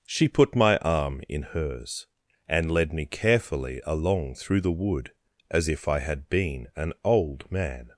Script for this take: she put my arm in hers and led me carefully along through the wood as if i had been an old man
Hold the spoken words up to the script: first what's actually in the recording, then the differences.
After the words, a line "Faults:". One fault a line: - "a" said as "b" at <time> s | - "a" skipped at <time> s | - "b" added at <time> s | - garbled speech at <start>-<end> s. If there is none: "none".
she put my arm in hers and led me carefully along through the wood as if i had been an old man
Faults:
none